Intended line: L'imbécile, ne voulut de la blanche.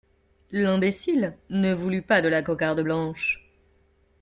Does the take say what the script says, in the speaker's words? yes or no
no